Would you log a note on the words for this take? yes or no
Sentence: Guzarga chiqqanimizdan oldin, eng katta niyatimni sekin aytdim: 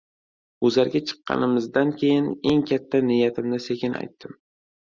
yes